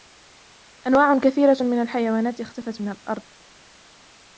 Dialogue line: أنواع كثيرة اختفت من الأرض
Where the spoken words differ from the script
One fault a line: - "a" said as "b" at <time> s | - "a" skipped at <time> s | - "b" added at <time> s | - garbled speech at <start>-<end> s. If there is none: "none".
- "من الحيوانات" added at 1.6 s